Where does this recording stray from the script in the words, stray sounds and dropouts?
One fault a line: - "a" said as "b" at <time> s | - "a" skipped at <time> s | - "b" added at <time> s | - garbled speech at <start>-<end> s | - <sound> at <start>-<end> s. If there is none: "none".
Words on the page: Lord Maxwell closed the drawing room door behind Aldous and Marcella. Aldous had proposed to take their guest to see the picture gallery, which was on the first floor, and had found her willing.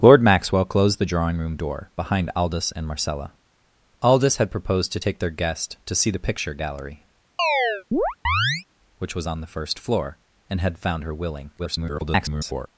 - chirp at 7.4-8.6 s
- garbled speech at 11.6-12.7 s